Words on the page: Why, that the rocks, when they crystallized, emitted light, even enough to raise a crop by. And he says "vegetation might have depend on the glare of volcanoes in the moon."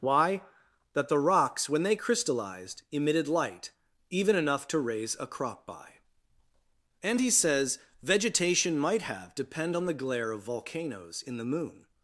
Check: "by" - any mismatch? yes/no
no